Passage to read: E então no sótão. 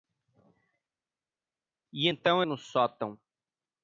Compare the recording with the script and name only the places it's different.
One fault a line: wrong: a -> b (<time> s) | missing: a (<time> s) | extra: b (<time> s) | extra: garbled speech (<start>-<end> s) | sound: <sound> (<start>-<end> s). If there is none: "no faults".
no faults